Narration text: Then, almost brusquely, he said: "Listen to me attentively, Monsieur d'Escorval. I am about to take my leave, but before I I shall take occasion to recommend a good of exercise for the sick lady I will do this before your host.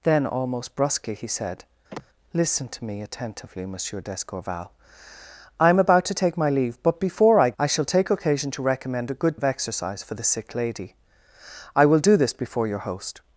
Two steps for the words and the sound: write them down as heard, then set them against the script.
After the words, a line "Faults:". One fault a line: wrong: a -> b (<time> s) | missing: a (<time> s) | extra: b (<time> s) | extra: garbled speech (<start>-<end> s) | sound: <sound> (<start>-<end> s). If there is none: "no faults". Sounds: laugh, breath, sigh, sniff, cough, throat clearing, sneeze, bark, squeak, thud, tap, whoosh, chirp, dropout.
Then, almost brusquely, he said: "Listen to me attentively, Monsieur d'Escorval. I am about to take my leave, but before I I shall take occasion to recommend a good of exercise for the sick lady I will do this before your host.
Faults:
sound: sigh (1.9-2.1 s)